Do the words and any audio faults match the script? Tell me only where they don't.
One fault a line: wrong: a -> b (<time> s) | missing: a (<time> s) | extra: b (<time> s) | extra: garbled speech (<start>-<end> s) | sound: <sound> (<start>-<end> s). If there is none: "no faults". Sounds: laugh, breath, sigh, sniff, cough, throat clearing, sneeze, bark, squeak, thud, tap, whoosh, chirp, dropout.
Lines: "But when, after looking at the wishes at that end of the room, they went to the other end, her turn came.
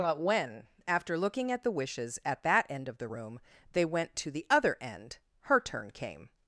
no faults